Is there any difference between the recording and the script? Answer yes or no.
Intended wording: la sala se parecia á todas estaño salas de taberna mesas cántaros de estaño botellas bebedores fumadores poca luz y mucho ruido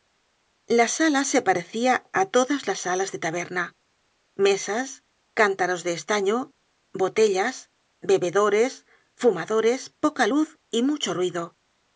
yes